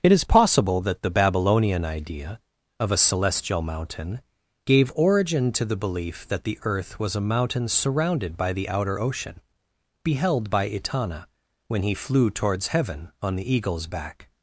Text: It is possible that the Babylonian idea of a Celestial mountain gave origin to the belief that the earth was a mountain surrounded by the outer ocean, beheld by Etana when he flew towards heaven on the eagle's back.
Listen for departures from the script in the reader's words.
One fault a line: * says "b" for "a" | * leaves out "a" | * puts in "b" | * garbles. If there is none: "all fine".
all fine